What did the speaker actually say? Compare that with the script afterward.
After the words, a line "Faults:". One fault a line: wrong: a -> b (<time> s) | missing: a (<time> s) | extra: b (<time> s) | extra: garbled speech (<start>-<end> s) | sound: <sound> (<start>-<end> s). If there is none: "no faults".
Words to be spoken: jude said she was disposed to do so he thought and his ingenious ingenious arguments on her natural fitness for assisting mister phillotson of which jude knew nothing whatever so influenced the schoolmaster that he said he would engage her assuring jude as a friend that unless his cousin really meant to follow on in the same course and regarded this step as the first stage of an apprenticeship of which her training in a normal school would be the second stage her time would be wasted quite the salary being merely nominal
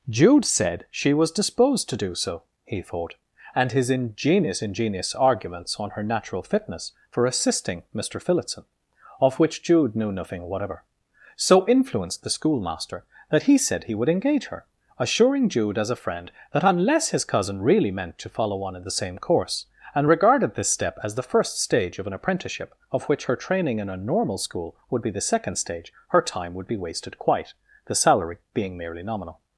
jude said she was disposed to do so he thought and his ingenious ingenious arguments on her natural fitness for assisting mister phillotson of which jude knew nothing whatever so influenced the schoolmaster that he said he would engage her assuring jude as a friend that unless his cousin really meant to follow on in the same course and regarded this step as the first stage of an apprenticeship of which her training in a normal school would be the second stage her time would be wasted quite the salary being merely nominal
Faults:
no faults